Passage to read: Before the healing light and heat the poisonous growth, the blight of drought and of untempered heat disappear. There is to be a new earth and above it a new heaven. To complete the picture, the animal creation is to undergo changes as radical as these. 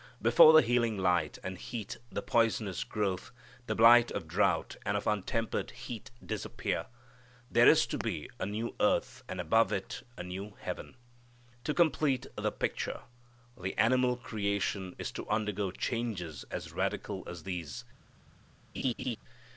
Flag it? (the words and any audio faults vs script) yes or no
yes